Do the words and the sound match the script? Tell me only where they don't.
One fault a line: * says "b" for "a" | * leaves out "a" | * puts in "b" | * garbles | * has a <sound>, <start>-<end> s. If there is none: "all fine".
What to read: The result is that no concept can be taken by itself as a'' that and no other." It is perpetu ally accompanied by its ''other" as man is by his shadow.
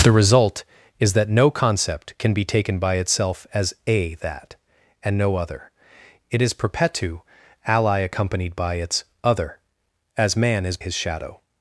* leaves out "by"